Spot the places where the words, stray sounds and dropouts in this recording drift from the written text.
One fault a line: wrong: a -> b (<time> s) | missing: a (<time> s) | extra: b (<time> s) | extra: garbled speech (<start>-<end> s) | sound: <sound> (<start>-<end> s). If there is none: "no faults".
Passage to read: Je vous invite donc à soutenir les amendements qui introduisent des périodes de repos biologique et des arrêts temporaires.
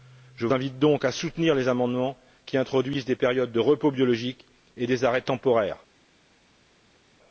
missing: vous (0.5 s)